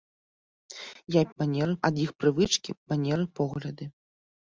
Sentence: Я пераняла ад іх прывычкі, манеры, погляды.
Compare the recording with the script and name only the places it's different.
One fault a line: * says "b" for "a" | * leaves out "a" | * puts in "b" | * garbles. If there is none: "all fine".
* says "манеры" for "пераняла"